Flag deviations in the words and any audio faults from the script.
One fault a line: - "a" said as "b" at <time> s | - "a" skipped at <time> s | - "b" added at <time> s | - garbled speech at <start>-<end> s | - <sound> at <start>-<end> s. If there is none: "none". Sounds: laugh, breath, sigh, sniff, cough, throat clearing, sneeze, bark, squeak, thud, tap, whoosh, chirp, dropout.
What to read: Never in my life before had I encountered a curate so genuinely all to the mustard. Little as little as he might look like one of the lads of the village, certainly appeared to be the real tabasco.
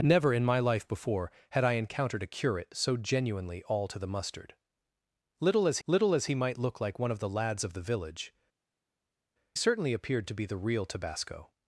none